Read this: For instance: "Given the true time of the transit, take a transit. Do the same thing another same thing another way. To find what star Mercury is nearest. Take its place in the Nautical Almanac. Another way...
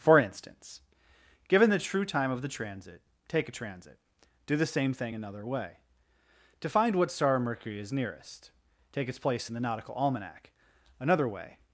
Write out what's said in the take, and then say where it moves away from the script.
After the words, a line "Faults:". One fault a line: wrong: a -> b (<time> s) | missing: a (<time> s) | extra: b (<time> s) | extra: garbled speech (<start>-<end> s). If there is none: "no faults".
For instance: "Given the true time of the transit, take a transit. Do the same thing another way. To find what star Mercury is nearest. Take its place in the Nautical Almanac. Another way...
Faults:
missing: same thing another (5.4 s)